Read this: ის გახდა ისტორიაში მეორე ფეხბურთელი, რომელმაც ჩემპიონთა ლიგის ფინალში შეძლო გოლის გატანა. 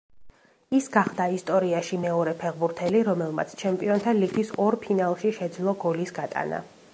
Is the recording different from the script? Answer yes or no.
yes